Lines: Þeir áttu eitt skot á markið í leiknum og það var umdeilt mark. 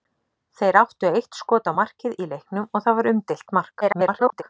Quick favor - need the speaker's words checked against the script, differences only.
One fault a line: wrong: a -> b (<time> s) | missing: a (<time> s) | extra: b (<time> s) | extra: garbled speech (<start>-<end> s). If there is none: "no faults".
extra: garbled speech (3.8-4.4 s)